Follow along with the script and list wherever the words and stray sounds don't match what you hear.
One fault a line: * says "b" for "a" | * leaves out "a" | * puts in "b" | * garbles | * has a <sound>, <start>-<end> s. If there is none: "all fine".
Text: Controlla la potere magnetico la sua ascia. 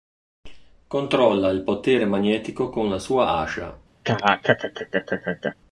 * says "il" for "la"
* puts in "con"
* has a laugh, 4.0-5.5 s